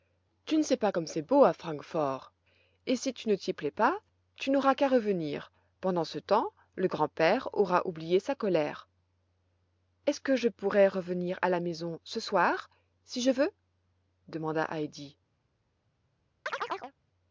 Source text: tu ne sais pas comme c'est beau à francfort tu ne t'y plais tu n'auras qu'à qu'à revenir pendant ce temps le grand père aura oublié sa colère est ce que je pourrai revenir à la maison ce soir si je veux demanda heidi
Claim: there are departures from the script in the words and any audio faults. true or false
true